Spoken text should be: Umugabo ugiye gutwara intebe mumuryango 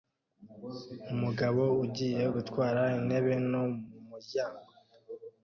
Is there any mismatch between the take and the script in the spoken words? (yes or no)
yes